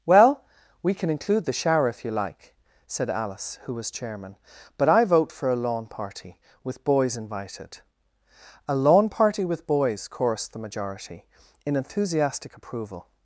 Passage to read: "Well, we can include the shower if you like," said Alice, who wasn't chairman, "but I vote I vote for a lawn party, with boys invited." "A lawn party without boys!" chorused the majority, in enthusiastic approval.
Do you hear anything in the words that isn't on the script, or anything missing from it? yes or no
yes